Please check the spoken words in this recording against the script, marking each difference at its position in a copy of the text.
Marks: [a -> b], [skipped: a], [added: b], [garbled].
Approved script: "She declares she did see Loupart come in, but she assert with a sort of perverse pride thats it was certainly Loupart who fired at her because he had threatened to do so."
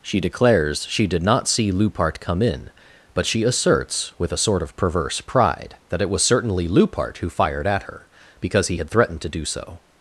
"She declares she did [added: not] see Loupart come in, but she [assert -> asserts] with a sort of perverse pride [thats -> that] it was certainly Loupart who fired at her because he had threatened to do so."